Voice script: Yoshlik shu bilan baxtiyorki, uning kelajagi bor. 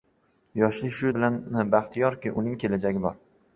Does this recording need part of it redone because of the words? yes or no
no